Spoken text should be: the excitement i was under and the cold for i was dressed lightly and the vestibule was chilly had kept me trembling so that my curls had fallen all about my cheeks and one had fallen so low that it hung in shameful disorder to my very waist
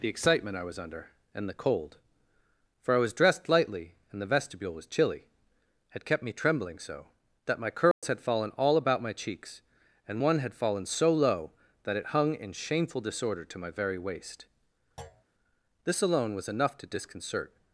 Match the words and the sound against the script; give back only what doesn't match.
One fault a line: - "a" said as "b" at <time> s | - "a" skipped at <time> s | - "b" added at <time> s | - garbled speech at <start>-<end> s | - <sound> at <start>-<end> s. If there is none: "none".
- dropout at 7.9-8.0 s
- thud at 15.0-15.2 s
- "this alone was enough to disconcert" added at 15.9 s